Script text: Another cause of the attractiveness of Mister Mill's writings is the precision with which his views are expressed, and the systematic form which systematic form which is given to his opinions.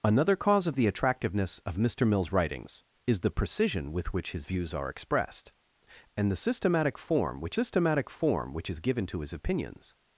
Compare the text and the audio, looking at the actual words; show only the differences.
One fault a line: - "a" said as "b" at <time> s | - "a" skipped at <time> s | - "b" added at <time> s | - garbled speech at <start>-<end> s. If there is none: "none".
none